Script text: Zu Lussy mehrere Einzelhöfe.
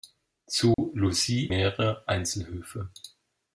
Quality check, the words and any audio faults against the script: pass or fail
fail